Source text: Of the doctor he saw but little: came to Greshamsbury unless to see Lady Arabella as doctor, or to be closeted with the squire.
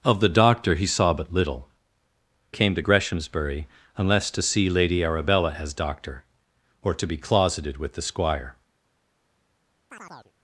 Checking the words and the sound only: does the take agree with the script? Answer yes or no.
no